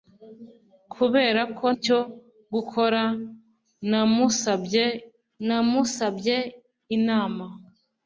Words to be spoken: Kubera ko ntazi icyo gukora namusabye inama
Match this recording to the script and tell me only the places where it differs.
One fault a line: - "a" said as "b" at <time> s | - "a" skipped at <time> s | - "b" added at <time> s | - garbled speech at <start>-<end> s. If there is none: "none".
- "ntazi" skipped at 1.6 s
- "namusabye" added at 5.5 s